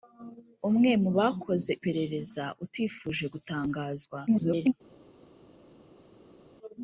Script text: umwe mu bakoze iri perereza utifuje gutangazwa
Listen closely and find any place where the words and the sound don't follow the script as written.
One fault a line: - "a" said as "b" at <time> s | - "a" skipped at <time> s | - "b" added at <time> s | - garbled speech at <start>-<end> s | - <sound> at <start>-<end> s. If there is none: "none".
- "iri" skipped at 1.7 s
- garbled speech at 4.3-4.7 s